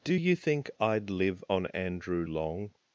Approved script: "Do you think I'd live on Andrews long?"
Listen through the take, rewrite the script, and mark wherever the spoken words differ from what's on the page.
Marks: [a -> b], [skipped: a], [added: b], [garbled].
"Do you think I'd live on [Andrews -> Andrew] long?"